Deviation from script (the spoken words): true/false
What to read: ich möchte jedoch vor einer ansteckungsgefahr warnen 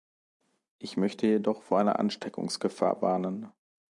false